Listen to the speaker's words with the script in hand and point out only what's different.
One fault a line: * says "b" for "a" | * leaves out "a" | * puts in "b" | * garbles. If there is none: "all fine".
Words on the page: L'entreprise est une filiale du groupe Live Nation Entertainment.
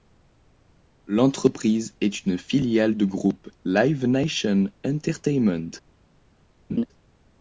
all fine